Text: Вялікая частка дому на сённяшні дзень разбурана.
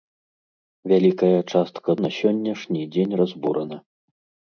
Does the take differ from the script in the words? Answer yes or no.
yes